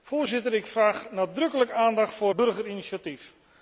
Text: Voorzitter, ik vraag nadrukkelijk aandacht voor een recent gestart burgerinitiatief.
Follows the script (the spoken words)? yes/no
no